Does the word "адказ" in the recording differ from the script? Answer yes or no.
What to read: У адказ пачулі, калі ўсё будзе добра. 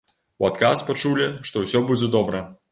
no